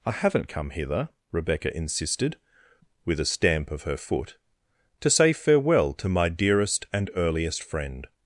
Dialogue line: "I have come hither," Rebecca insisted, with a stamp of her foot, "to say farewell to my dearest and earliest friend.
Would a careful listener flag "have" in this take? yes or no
yes